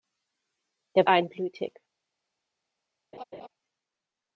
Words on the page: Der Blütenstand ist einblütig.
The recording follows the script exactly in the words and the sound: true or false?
false